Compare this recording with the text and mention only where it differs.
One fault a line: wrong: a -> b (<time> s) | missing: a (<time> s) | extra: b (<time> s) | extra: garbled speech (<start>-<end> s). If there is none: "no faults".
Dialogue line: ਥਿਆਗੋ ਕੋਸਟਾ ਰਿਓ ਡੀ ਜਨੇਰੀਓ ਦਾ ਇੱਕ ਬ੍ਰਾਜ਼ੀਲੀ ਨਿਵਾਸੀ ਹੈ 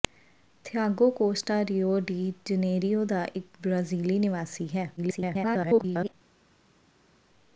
extra: garbled speech (5.0-6.1 s)